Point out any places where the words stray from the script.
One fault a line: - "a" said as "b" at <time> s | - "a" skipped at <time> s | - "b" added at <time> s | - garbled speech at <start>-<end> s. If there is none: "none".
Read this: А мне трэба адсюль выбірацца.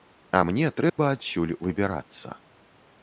none